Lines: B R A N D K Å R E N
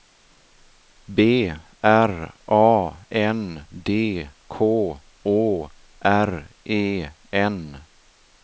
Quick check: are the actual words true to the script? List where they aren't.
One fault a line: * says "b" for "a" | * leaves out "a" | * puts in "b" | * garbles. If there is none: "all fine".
all fine